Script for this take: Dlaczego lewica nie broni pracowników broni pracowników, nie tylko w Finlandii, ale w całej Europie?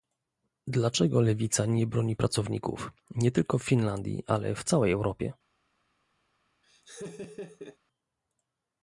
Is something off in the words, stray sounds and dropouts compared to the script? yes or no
yes